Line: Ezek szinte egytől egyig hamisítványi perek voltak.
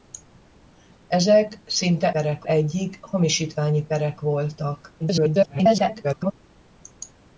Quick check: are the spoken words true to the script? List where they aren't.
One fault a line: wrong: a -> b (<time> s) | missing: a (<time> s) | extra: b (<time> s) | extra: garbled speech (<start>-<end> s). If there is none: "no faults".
wrong: egytől -> perek (2.1 s)
extra: garbled speech (5.0-6.3 s)